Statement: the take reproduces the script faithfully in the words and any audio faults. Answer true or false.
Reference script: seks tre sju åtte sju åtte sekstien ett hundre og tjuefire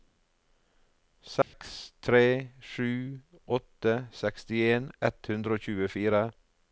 false